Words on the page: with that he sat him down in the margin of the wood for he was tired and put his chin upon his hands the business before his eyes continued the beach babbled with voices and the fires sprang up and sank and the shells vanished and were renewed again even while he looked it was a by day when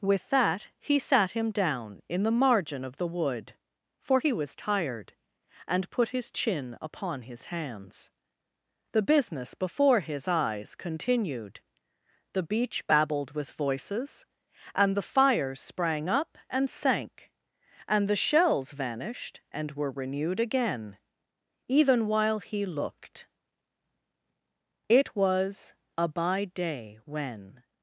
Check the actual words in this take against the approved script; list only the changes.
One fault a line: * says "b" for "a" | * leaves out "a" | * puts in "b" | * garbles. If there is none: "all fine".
all fine